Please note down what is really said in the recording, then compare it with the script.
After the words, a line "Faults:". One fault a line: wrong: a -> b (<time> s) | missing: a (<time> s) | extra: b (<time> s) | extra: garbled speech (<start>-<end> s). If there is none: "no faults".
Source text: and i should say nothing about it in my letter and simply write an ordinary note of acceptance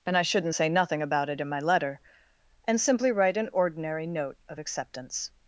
and i shouldn't say nothing about it in my letter and simply write an ordinary note of acceptance
Faults:
wrong: should -> shouldn't (0.2 s)